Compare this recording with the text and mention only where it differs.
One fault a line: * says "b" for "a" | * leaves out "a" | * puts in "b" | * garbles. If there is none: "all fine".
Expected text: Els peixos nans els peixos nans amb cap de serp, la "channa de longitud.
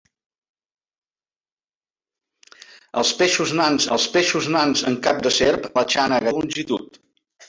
all fine